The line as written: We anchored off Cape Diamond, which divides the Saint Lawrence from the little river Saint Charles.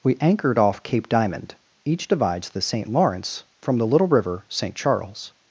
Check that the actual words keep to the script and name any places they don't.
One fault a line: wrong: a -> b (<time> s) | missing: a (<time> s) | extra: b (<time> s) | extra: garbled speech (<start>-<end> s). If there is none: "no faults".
wrong: which -> each (1.9 s)